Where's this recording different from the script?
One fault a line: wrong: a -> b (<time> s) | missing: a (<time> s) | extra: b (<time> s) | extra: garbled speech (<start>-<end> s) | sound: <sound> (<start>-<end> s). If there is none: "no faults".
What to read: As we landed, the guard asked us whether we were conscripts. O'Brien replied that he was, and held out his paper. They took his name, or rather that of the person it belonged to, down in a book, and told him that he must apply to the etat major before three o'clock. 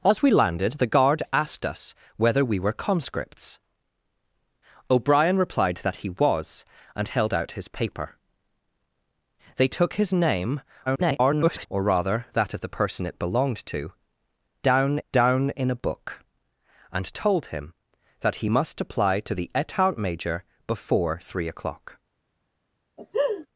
extra: garbled speech (10.9-11.7 s)
extra: down (15.1 s)
sound: laugh (23.0-23.5 s)